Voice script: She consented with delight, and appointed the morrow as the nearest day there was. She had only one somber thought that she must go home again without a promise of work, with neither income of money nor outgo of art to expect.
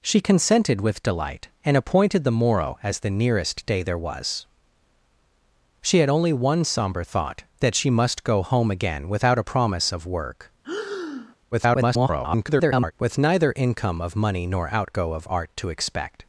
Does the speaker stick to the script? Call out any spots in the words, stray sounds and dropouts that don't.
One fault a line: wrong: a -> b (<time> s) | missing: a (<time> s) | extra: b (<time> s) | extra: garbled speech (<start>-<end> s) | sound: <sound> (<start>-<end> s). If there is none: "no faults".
sound: breath (10.6-11.4 s)
extra: garbled speech (11.5-12.9 s)